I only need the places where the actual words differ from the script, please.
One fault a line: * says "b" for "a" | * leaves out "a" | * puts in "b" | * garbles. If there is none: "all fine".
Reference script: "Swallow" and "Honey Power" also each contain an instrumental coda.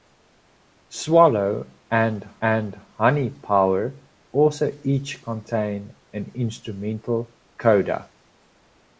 * puts in "and"